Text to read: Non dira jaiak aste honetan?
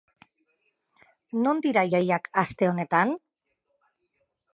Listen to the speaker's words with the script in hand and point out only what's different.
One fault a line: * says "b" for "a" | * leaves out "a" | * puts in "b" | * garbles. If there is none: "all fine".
all fine